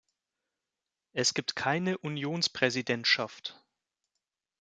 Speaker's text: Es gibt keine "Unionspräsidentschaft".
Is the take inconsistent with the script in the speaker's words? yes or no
no